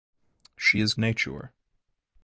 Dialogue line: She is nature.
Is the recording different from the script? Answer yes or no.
no